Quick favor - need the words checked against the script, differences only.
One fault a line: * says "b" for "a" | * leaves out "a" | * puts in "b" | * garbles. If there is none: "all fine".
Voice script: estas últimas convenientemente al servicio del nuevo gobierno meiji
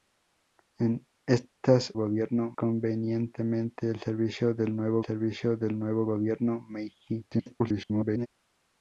* says "gobierno" for "últimas"
* puts in "servicio del nuevo"
* garbles